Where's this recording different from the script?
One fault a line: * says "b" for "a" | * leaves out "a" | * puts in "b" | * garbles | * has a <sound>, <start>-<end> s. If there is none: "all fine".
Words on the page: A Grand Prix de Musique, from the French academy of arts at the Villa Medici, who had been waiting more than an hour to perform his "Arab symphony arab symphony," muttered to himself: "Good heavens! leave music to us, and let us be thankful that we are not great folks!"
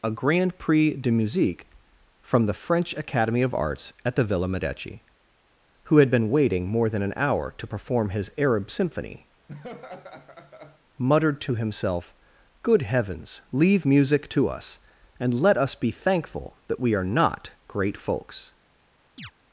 * leaves out "arab symphony"
* has a laugh, 9.5-10.8 s
* has a chirp, 19.2-19.3 s